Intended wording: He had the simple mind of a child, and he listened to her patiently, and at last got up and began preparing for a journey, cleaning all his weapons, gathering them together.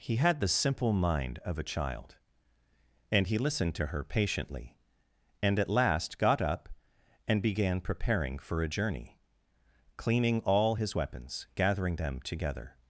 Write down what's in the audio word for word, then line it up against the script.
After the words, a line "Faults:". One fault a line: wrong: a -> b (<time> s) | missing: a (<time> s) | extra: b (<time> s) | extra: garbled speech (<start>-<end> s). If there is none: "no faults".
He had the simple mind of a child, and he listened to her patiently, and at last got up and began preparing for a journey, cleaning all his weapons, gathering them together.
Faults:
no faults